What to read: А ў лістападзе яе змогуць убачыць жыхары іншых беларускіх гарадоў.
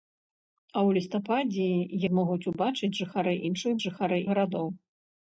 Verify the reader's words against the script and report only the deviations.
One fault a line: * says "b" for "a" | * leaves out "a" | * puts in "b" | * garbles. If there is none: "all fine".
* leaves out "яе"
* says "жыхары" for "беларускіх"